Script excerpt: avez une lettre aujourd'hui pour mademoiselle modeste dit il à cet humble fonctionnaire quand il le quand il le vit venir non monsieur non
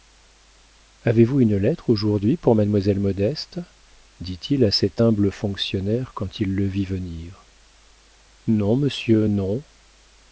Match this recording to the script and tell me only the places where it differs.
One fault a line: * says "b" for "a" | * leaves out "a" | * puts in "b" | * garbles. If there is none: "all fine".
* puts in "vous"
* leaves out "quand il le"